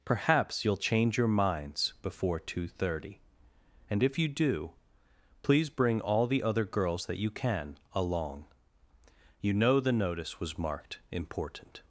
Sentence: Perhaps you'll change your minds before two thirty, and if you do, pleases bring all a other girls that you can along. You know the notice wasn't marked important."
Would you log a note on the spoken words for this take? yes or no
yes